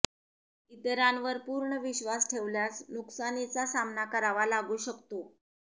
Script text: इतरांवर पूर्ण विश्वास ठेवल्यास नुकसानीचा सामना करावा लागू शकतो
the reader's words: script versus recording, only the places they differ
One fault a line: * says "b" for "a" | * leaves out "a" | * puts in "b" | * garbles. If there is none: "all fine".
all fine